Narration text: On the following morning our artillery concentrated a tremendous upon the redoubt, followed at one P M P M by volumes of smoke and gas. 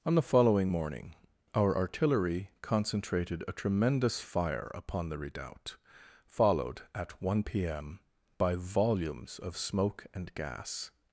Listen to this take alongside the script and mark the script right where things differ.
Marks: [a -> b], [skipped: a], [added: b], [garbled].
On the following morning our artillery concentrated a tremendous [added: fire] upon the redoubt, followed at one P M [skipped: P M] by volumes of smoke and gas.